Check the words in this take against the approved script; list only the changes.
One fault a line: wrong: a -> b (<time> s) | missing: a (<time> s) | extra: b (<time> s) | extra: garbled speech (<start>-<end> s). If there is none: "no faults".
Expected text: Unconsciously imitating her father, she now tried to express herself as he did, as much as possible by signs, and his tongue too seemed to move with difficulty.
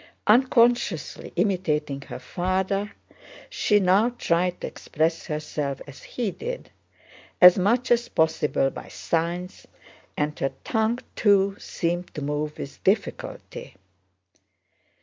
wrong: his -> her (10.4 s)